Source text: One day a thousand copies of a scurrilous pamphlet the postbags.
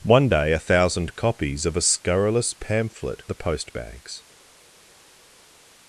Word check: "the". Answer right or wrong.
right